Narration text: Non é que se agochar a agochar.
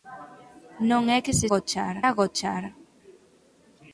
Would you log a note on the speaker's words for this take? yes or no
no